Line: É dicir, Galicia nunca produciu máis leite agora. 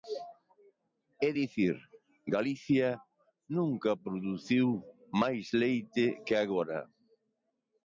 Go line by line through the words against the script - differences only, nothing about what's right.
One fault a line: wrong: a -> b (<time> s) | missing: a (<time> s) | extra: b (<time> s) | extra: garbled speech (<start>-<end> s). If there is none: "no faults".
extra: que (6.2 s)